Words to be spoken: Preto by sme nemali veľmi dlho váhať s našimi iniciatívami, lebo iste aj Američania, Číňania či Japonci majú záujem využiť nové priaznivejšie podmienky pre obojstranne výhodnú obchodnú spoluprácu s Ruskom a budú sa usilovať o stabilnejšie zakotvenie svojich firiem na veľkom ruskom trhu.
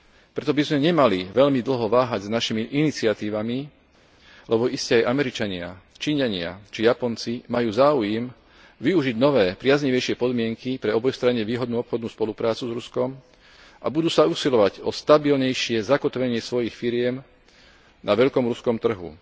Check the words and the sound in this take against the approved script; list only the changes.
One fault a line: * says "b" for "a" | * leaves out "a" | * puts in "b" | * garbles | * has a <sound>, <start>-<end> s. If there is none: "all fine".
all fine